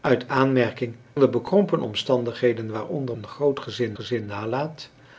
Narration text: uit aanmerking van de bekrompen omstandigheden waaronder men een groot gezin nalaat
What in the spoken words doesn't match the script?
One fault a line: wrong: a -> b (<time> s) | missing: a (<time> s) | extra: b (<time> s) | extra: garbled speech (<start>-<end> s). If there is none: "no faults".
missing: van (0.9 s)
missing: men (3.2 s)
extra: gezin (3.9 s)